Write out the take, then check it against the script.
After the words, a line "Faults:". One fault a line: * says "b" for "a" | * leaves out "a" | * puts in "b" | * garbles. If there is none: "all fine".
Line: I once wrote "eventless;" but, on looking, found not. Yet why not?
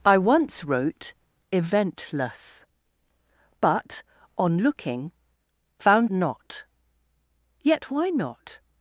I once wrote "eventless;" but, on looking, found not. Yet why not?
Faults:
all fine